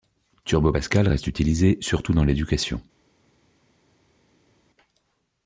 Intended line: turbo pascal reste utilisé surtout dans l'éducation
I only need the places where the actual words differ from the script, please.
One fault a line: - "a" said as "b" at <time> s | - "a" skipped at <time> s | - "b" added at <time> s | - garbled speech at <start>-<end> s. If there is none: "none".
none